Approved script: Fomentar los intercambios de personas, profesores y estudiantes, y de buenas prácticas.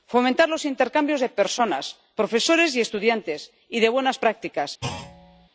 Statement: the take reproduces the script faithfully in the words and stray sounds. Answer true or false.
false